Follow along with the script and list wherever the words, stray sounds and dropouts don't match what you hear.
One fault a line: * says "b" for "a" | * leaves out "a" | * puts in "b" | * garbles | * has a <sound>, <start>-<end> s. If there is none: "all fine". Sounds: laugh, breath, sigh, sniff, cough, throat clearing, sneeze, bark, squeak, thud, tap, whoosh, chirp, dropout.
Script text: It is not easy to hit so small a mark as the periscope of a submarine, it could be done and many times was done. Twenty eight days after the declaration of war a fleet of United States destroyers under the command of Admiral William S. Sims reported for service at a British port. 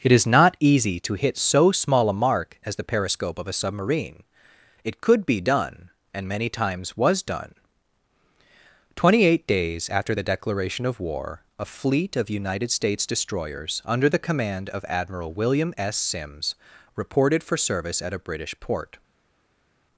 all fine